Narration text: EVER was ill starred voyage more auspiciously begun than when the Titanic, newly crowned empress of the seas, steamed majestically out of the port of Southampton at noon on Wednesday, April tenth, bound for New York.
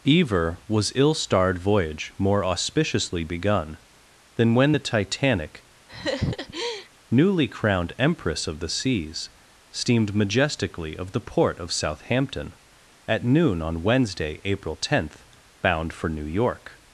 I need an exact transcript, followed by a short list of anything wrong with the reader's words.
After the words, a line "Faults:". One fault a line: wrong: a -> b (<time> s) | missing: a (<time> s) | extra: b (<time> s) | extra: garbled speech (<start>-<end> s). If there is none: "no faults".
EVER was ill starred voyage more auspiciously begun than when the Titanic, newly crowned empress of the seas, steamed majestically of the port of Southampton at noon on Wednesday, April tenth, bound for New York.
Faults:
missing: out (11.0 s)